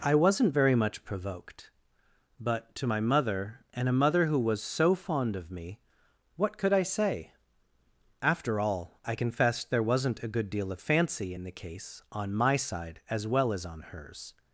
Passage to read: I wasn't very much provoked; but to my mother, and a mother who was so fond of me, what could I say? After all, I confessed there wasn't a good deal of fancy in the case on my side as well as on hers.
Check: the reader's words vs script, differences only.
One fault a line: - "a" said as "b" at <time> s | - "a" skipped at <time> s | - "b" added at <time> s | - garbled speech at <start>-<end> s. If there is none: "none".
none